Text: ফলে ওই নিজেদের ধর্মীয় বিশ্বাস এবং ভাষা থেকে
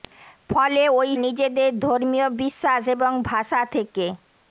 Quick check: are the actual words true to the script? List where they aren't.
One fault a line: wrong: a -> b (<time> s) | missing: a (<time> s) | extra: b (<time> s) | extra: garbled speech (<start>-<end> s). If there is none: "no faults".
no faults